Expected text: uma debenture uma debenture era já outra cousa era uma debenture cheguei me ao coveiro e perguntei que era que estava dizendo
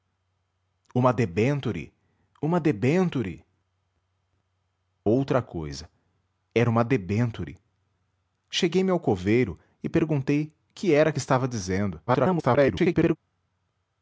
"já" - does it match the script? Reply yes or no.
no